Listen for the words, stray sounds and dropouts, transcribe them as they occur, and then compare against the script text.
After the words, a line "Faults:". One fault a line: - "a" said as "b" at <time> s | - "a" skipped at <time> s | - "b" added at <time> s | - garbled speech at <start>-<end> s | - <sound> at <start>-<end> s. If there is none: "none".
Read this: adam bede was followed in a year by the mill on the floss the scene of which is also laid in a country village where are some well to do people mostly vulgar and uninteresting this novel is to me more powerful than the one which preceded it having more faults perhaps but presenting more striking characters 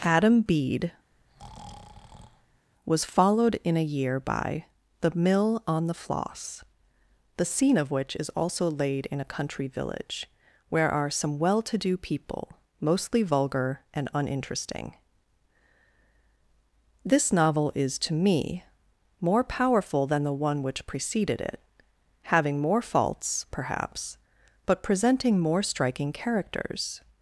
adam bede was followed in a year by the mill on the floss the scene of which is also laid in a country village where are some well to do people mostly vulgar and uninteresting this novel is to me more powerful than the one which preceded it having more faults perhaps but presenting more striking characters
Faults:
- breath at 1.1-2.7 s